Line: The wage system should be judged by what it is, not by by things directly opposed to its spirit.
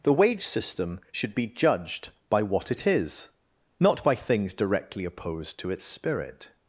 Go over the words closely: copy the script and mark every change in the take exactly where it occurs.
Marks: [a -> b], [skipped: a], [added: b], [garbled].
The wage system should be judged by what it is, not by [skipped: by] things directly opposed to its spirit.